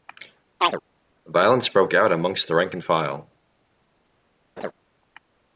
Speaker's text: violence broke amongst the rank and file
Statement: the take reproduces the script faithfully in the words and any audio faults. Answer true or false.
false